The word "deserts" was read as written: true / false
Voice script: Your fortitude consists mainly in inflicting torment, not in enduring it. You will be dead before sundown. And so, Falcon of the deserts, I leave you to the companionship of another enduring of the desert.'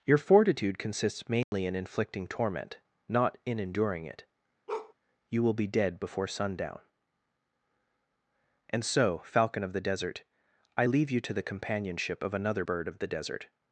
false